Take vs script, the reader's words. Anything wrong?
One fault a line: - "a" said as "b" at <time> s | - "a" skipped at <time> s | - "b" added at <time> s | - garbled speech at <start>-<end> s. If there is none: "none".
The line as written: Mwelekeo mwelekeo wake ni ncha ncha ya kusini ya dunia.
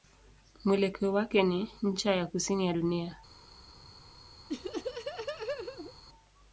- "mwelekeo" skipped at 1.1 s
- "ncha" skipped at 2.1 s